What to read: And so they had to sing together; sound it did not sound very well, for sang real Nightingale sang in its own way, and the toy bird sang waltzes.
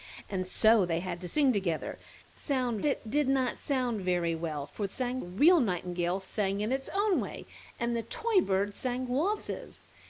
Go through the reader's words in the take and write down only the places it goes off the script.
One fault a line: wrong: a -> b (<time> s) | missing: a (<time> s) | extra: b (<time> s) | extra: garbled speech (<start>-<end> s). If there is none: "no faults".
no faults